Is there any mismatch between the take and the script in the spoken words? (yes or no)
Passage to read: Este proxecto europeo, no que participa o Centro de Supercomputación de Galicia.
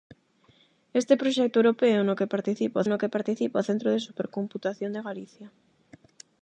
yes